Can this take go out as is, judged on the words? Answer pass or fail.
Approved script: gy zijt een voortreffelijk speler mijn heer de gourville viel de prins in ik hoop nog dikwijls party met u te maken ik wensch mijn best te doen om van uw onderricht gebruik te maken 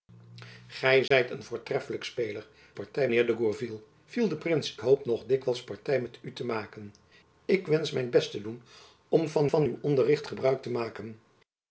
fail